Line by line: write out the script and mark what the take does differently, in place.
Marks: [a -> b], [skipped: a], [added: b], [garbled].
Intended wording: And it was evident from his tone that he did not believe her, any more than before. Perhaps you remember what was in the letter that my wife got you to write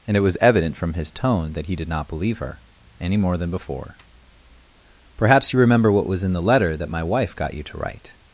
And it was evident from his tone that he did not believe her, any more than before. Perhaps you remember what was in the letter that my wife got you to write